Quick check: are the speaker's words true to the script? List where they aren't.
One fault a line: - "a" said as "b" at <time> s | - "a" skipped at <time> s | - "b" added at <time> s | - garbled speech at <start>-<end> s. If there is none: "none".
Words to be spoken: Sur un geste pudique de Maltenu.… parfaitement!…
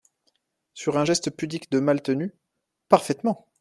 none